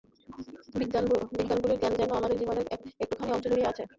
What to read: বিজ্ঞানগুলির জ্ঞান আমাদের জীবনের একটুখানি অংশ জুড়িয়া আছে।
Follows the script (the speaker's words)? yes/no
no